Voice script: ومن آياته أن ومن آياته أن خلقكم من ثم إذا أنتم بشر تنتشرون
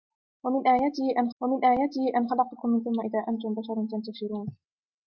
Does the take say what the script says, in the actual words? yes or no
yes